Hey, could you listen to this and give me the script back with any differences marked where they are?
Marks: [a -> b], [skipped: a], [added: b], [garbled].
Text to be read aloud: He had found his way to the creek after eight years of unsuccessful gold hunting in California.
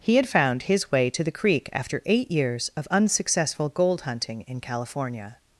He had found his way to the creek after eight years of unsuccessful gold hunting in California.